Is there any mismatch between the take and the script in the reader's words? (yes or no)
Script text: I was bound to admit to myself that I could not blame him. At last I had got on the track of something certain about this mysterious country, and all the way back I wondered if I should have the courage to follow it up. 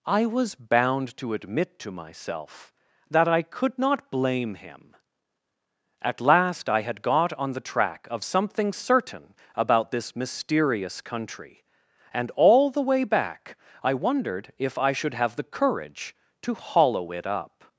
yes